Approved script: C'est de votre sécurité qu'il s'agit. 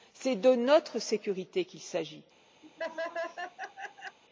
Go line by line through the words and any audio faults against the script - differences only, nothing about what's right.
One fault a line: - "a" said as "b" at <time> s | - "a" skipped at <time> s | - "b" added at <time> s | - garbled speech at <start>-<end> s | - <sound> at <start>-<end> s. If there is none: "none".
- "votre" said as "notre" at 0.6 s
- laugh at 2.6-4.2 s